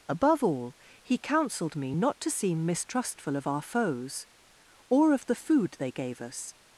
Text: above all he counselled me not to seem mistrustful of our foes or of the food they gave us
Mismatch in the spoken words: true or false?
false